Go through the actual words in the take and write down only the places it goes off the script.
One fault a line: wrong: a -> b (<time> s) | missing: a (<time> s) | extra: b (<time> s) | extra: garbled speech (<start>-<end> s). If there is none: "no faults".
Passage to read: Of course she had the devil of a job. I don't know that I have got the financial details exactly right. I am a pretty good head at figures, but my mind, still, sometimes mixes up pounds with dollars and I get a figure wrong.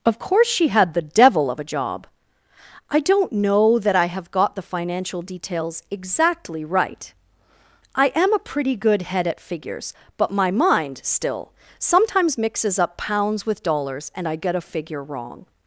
no faults